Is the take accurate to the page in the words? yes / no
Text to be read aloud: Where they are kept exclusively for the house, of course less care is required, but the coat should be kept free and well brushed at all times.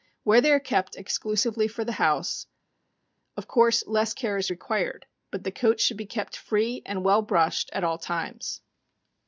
yes